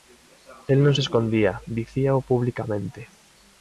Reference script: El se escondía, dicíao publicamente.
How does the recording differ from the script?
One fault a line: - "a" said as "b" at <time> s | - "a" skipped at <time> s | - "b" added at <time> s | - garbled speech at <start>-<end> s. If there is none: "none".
- "non" added at 0.8 s